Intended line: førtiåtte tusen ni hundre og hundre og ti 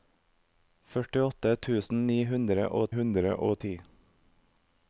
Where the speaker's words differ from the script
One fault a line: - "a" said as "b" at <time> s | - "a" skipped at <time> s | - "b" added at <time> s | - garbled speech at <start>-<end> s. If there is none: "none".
none